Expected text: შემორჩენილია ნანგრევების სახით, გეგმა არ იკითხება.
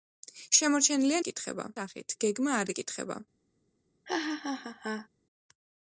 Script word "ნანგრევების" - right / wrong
wrong